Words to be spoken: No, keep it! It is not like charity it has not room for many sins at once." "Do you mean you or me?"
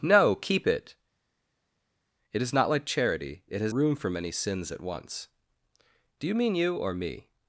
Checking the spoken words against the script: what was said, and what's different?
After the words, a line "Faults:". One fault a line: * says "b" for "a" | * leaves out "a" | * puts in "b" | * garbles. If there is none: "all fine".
No, keep it! It is not like charity it has room for many sins at once." "Do you mean you or me?"
Faults:
* leaves out "not"